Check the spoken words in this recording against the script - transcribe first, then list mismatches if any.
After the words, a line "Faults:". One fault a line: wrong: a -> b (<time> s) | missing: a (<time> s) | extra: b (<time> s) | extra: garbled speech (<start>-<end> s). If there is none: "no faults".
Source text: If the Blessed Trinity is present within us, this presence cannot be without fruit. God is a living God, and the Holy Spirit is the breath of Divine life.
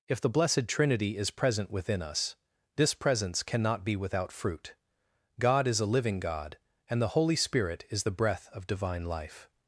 If the Blessed Trinity is present within us, this presence cannot be without fruit. God is a living God, and the Holy Spirit is the breath of Divine life.
Faults:
no faults